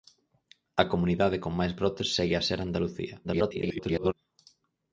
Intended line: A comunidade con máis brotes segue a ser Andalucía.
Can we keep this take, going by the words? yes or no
no